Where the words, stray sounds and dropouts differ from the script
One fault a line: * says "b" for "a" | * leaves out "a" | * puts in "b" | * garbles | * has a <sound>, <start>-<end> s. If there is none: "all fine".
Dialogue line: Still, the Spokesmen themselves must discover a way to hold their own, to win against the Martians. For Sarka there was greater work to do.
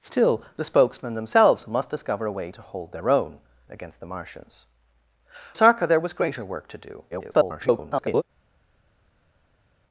* leaves out "to win"
* leaves out "For"
* garbles